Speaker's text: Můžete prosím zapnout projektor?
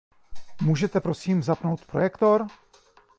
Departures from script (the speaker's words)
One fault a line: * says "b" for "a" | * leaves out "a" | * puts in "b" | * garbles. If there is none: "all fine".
all fine